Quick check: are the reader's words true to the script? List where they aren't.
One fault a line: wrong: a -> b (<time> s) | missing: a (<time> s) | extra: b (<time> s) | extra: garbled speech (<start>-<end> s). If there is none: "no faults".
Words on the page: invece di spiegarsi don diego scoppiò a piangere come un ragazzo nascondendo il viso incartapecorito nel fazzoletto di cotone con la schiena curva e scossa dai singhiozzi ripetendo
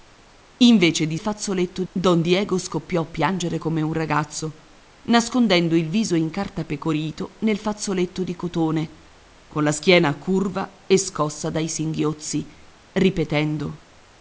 wrong: spiegarsi -> fazzoletto (1.2 s)